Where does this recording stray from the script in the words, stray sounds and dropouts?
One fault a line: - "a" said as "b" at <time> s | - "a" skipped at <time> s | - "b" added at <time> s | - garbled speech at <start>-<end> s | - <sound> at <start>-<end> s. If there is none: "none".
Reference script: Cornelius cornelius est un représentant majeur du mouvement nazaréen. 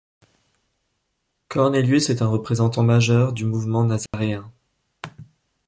- "cornelius" skipped at 2.1 s
- dropout at 4.1-4.1 s